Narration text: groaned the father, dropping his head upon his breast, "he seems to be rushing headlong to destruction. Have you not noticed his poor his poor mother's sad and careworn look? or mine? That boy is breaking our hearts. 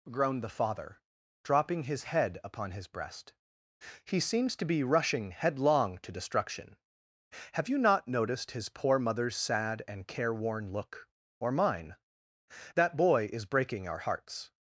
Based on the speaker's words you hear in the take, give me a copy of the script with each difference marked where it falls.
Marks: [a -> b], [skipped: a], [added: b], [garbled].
groaned the father, dropping his head upon his breast, "he seems to be rushing headlong to destruction. Have you not noticed his poor [skipped: his poor] mother's sad and careworn look? or mine? That boy is breaking our hearts.